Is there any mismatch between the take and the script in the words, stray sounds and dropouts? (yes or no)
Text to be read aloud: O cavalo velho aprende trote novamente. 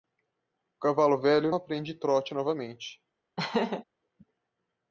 yes